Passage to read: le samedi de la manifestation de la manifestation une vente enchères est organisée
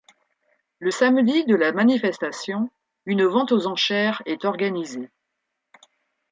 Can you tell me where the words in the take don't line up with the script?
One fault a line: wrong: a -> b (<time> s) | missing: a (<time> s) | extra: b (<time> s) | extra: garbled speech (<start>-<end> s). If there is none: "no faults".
missing: de la manifestation (2.7 s)
extra: aux (3.5 s)